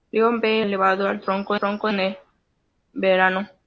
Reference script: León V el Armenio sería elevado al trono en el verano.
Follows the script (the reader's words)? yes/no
no